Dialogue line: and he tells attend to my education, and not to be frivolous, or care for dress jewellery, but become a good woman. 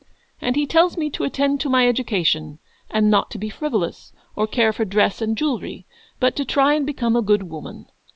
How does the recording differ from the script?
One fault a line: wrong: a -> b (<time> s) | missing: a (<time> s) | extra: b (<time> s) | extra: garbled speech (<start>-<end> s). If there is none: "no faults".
extra: me to (1.0 s)
extra: and (5.2 s)
extra: to try and (6.4 s)